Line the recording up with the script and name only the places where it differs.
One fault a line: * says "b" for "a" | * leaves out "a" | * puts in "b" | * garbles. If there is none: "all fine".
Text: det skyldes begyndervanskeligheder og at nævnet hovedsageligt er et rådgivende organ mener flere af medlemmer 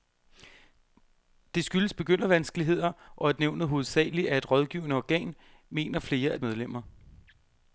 all fine